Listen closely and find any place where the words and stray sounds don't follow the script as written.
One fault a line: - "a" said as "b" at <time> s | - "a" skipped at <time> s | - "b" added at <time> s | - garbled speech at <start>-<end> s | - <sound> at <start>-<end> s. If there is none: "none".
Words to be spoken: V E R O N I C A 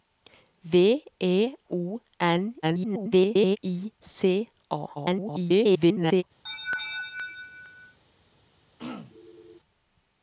- "R" skipped at 1.5 s
- garbled speech at 2.6-3.6 s
- garbled speech at 5.0-6.2 s
- laugh at 6.5-8.0 s
- throat clearing at 8.8-9.6 s